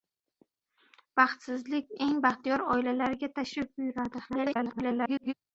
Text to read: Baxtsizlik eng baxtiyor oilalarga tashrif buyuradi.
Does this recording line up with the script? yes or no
no